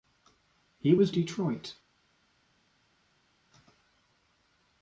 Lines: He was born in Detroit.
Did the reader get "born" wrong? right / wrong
wrong